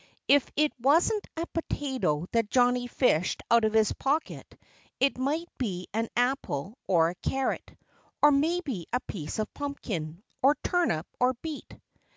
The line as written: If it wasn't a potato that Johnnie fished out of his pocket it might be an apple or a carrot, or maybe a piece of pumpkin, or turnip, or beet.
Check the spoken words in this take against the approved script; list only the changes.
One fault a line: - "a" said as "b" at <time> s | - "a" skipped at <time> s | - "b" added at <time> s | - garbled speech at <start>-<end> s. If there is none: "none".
none